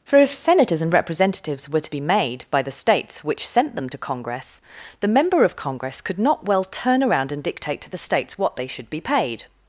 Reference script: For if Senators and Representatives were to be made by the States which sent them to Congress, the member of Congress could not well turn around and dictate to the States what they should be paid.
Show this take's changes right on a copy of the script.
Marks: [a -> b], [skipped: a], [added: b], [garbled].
For if Senators and Representatives were to be made by the States which sent them to Congress, the member of Congress could not well turn around and dictate to the States what they should be paid.